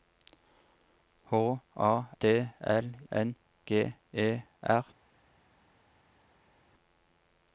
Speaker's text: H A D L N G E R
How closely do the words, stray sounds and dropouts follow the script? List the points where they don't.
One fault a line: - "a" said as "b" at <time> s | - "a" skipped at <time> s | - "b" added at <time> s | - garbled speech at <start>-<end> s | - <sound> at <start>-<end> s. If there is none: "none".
none